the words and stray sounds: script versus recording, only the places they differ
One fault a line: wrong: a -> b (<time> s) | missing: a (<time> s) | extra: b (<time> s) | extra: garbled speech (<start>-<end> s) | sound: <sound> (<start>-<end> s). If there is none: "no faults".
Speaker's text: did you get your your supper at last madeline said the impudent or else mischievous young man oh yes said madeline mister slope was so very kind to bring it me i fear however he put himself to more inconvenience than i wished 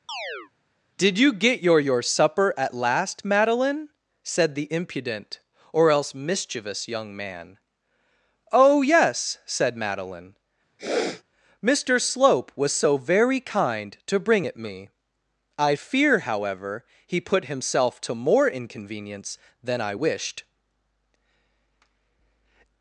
sound: chirp (0.1-0.5 s)
sound: sniff (10.8-11.2 s)